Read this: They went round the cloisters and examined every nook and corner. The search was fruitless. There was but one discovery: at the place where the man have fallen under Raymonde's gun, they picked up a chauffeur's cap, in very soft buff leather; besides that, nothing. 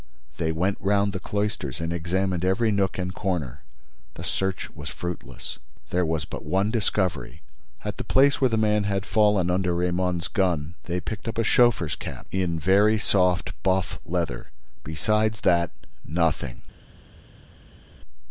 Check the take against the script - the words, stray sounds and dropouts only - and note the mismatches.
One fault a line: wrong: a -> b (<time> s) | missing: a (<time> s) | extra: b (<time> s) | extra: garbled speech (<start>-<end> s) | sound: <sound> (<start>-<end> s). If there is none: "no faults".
wrong: have -> had (8.8 s)